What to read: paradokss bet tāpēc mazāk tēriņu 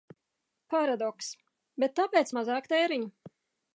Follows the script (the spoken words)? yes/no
yes